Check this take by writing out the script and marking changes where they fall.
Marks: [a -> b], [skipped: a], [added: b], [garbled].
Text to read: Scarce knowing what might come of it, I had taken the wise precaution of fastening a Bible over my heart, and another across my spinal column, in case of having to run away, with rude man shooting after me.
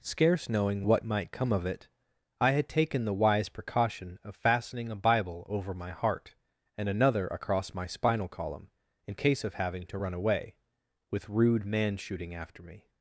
Scarce knowing what might come of it, I had taken the wise precaution of fastening a Bible over my heart, and another across my spinal column, in case of having to run away, with rude man shooting after me.